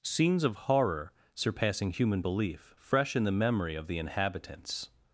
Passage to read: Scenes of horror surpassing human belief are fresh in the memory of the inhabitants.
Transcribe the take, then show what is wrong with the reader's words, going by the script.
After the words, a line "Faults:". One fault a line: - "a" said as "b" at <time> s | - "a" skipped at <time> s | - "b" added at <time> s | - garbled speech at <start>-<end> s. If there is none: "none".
Scenes of horror surpassing human belief fresh in the memory of the inhabitants.
Faults:
- "are" skipped at 2.7 s